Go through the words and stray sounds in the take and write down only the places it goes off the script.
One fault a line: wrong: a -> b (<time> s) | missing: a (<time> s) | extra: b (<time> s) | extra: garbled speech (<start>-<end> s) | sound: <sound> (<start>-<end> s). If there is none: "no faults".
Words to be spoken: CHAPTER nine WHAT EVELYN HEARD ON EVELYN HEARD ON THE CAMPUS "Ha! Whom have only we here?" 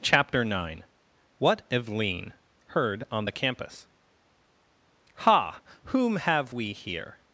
missing: EVELYN HEARD ON (3.2 s)
missing: only (6.5 s)